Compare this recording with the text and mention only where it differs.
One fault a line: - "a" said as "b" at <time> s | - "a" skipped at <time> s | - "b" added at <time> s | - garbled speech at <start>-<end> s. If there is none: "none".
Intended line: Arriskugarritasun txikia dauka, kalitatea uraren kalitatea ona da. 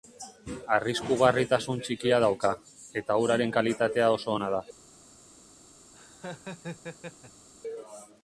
- "kalitatea" said as "eta" at 3.0 s
- "oso" added at 4.2 s